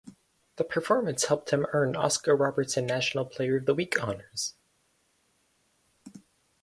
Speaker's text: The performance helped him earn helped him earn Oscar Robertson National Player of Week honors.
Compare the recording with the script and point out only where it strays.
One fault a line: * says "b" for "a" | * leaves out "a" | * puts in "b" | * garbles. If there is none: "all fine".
* leaves out "helped him earn"
* puts in "the"